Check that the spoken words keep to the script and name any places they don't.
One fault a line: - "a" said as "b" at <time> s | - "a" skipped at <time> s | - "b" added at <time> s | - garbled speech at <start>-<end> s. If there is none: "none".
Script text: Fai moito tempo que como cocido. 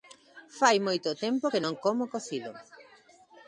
- "non" added at 1.6 s